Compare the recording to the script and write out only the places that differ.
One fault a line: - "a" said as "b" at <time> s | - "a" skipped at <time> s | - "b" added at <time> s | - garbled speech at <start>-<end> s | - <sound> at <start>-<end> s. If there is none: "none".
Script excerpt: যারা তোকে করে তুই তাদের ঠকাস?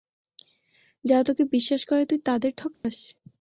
- "বিশ্বাস" added at 1.5 s
- dropout at 2.7-2.8 s